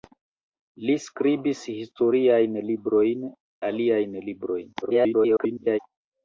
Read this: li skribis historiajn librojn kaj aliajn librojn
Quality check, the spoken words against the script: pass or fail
fail